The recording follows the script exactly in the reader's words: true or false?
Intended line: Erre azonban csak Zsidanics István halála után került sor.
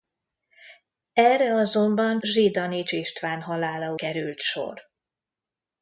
false